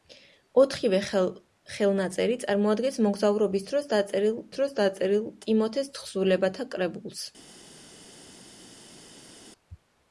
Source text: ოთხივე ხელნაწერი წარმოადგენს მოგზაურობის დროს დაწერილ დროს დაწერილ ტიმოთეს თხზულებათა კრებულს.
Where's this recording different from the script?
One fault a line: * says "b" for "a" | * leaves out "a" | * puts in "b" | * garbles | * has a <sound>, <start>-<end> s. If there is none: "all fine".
all fine